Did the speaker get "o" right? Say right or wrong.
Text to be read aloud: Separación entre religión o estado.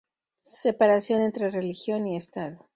wrong